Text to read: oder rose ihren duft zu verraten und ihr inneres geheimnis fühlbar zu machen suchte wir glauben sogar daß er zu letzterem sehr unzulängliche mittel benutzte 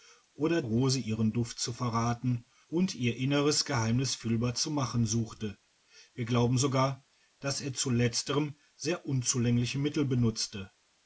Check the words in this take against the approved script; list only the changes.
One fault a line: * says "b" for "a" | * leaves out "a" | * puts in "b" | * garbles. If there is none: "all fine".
all fine